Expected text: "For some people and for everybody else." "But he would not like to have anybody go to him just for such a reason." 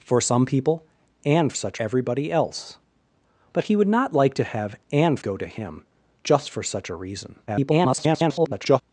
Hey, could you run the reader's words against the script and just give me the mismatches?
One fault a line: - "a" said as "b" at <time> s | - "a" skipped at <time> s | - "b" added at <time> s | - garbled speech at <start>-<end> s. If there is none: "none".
- "for" said as "such" at 1.5 s
- "anybody" said as "and" at 4.9 s
- garbled speech at 7.5-8.8 s